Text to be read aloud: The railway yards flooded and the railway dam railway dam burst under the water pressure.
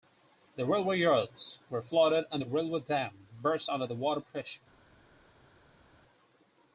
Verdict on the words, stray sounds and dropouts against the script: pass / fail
fail